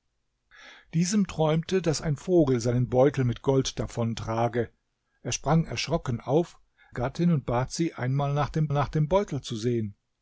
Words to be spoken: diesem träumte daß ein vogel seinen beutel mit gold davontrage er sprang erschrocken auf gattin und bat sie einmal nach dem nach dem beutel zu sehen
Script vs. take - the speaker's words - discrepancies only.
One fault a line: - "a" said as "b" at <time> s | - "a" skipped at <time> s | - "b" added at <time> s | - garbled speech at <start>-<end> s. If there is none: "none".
none